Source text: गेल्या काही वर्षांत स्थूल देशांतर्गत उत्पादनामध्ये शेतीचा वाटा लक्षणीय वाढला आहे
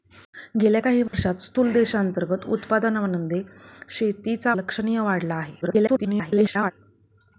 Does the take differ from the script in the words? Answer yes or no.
yes